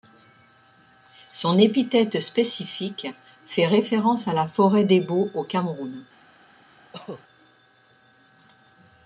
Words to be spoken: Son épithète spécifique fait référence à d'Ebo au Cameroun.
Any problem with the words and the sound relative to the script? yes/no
yes